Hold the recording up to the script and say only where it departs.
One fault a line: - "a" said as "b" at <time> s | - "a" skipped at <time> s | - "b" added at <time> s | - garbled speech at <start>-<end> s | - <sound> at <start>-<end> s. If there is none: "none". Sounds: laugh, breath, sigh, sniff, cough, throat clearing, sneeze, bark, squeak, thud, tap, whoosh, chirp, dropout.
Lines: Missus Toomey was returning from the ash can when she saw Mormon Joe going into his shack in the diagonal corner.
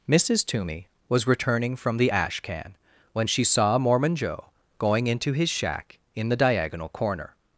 none